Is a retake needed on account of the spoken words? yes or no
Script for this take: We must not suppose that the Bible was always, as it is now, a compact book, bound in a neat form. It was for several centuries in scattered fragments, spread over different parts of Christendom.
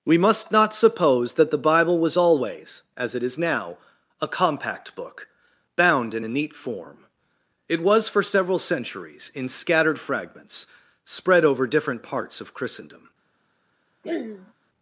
no